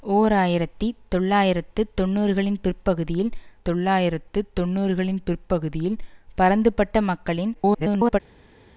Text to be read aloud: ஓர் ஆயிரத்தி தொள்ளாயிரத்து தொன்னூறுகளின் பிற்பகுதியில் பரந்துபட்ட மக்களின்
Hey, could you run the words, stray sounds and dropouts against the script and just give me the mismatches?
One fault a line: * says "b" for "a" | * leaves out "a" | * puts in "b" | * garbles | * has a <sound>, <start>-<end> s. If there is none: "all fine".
* puts in "தொள்ளாயிரத்து தொன்னூறுகளின் பிற்பகுதியில்"
* garbles